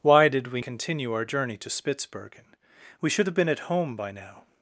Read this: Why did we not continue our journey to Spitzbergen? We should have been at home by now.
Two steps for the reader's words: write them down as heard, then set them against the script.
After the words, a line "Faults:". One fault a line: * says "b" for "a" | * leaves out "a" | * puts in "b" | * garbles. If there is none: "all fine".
Why did we continue our journey to Spitzbergen? We should have been at home by now.
Faults:
* leaves out "not"